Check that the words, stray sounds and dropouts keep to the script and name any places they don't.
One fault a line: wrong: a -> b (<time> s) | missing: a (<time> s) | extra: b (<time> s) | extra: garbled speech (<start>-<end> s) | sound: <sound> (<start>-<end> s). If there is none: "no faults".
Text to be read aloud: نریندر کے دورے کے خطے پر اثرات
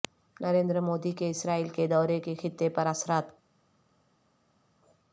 extra: مودی کے اسرائیل (0.8 s)